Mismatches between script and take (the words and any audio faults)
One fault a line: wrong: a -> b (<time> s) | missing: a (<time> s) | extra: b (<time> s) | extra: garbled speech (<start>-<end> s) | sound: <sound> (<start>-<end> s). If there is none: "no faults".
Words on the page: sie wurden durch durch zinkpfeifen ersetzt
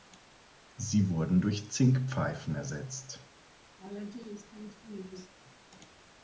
missing: durch (1.7 s)
sound: laugh (3.8-5.3 s)